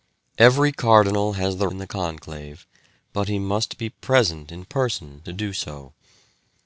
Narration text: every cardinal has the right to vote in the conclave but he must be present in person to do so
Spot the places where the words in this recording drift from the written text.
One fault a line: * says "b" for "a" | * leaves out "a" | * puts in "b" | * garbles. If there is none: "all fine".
* leaves out "right to vote"